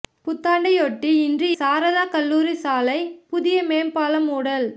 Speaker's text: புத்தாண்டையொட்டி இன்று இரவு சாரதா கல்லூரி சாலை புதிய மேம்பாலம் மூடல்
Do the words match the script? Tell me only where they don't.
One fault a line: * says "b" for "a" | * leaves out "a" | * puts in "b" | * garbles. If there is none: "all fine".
* leaves out "இரவு"